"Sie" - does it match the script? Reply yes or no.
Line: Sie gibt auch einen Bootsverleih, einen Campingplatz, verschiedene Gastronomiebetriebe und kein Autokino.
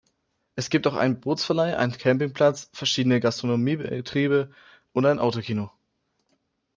no